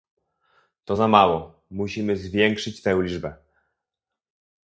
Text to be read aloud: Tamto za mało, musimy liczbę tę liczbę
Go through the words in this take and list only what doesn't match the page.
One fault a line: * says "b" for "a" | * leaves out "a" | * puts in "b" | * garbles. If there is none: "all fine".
* says "To" for "Tamto"
* says "zwiększyć" for "liczbę"